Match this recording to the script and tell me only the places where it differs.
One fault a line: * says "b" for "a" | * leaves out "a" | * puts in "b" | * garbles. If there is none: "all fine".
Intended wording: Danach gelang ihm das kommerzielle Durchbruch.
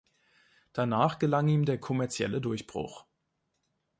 * says "der" for "das"